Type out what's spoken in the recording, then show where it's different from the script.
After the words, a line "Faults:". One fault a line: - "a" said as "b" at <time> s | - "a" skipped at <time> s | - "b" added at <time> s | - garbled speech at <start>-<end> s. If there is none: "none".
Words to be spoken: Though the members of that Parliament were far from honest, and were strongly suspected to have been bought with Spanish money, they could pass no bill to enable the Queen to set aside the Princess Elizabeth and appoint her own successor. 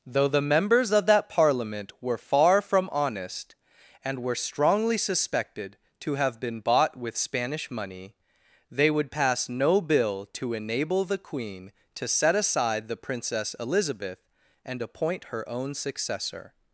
Though the members of that Parliament were far from honest, and were strongly suspected to have been bought with Spanish money, they would pass no bill to enable the Queen to set aside the Princess Elizabeth and appoint her own successor.
Faults:
- "could" said as "would" at 8.9 s